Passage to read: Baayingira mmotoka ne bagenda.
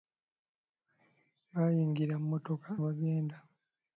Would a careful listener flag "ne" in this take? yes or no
yes